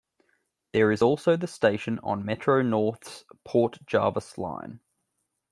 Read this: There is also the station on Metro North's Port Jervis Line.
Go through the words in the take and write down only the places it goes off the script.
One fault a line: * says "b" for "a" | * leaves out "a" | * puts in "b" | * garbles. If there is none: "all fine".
all fine